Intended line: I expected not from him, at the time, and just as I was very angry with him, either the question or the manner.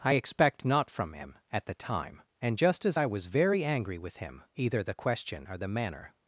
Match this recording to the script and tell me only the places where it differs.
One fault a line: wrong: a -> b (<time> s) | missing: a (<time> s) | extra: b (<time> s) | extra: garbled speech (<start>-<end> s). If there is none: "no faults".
wrong: expected -> expect (0.1 s)